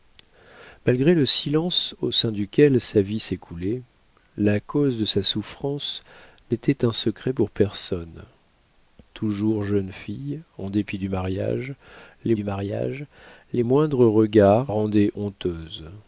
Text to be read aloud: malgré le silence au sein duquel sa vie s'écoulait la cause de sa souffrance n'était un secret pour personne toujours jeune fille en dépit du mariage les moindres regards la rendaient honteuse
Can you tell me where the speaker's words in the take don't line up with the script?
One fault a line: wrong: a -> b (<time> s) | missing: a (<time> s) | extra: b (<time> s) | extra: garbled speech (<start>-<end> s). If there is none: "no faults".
extra: du mariage les (12.3 s)
missing: la (14.7 s)